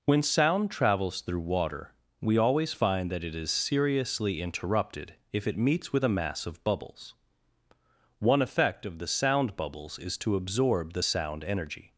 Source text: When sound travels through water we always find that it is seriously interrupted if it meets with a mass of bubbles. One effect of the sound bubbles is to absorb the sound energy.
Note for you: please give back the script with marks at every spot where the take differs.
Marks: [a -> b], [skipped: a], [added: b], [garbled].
When sound travels through water we always find that it is seriously interrupted if it meets with a mass of bubbles. One effect of the sound bubbles is to absorb the sound energy.